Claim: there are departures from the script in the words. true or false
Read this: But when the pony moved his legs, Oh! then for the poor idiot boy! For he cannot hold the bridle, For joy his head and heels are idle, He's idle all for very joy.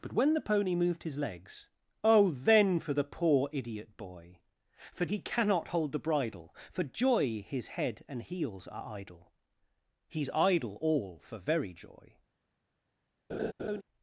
false